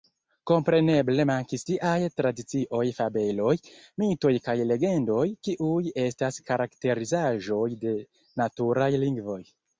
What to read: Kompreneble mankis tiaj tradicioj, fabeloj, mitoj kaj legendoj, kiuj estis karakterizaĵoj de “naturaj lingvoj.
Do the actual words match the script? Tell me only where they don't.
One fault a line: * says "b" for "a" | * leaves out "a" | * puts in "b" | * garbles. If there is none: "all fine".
* says "estas" for "estis"